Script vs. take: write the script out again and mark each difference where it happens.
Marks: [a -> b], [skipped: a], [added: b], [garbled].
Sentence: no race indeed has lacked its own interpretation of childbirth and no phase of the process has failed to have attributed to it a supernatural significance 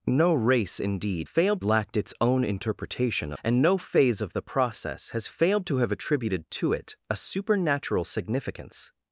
no race indeed [has -> failed] lacked its own interpretation [skipped: of childbirth] and no phase of the process has failed to have attributed to it a supernatural significance